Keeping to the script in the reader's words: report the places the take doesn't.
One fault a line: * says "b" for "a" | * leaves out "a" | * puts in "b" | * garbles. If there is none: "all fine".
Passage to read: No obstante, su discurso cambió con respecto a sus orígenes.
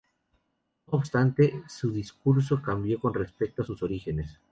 all fine